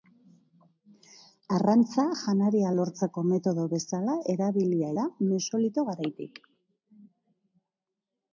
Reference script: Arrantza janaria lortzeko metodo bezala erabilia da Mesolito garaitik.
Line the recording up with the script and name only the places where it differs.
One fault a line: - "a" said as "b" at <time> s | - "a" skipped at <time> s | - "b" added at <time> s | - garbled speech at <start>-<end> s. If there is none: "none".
none